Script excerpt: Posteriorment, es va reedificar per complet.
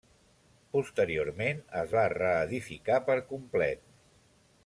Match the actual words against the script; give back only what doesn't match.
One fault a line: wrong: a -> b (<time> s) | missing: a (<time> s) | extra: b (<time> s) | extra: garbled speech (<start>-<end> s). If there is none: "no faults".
no faults